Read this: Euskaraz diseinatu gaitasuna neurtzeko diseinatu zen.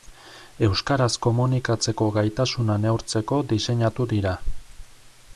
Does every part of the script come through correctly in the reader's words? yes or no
no